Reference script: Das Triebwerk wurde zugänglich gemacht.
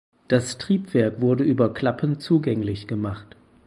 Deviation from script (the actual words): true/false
true